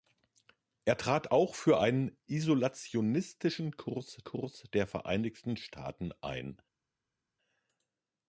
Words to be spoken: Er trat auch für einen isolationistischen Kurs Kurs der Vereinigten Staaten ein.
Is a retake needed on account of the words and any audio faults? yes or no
no